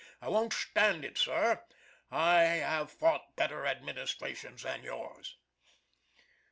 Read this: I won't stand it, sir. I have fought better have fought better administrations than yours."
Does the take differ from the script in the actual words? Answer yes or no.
yes